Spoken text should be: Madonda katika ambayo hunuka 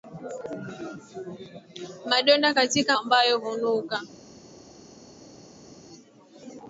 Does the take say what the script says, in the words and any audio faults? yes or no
yes